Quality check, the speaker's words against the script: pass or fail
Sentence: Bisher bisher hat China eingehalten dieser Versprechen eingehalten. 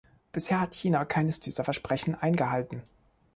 fail